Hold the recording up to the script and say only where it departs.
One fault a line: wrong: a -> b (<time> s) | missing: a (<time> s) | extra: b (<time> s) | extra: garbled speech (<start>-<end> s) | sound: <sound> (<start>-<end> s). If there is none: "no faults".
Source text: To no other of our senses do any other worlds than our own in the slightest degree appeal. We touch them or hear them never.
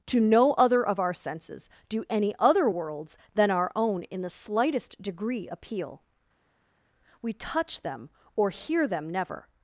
no faults